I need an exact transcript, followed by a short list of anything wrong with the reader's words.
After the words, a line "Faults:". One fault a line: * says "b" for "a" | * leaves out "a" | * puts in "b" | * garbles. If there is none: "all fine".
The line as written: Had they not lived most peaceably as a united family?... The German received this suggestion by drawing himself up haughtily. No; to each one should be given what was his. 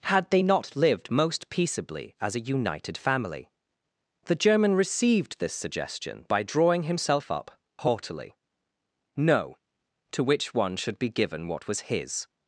Had they not lived most peaceably as a united family?... The German received this suggestion by drawing himself up haughtily. No; to which one should be given what was his.
Faults:
* says "which" for "each"